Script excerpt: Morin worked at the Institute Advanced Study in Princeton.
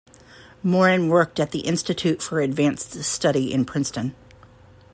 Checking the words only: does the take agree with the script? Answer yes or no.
no